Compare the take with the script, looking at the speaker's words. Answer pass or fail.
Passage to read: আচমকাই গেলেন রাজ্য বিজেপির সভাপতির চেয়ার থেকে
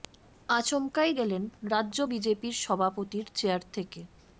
pass